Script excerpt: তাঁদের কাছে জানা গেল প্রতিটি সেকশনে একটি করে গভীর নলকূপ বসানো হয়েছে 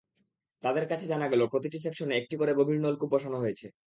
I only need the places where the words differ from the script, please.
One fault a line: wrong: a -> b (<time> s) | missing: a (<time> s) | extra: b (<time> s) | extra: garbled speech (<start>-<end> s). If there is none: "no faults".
no faults